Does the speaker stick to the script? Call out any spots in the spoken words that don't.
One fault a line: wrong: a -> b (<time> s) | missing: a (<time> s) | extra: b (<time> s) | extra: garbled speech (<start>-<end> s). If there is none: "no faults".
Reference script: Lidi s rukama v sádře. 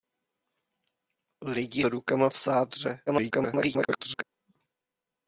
missing: s (1.9 s)
extra: garbled speech (3.1-4.2 s)